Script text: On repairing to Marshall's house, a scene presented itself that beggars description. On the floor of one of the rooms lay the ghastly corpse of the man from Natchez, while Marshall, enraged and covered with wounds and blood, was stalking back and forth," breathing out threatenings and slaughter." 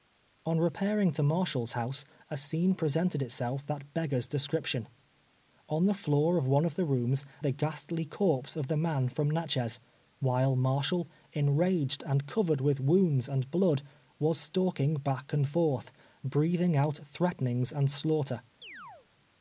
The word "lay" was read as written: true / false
false